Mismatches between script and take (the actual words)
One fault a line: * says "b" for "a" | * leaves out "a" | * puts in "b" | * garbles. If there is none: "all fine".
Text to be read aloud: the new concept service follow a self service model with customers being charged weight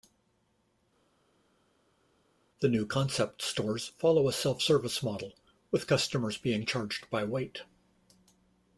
* says "stores" for "service"
* puts in "by"